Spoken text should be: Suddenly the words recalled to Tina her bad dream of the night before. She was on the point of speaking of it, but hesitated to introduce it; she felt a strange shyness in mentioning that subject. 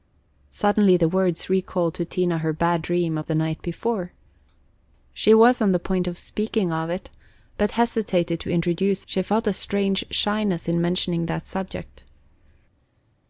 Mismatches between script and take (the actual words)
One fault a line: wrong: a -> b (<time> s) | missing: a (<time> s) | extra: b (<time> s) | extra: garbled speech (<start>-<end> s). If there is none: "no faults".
missing: it (9.1 s)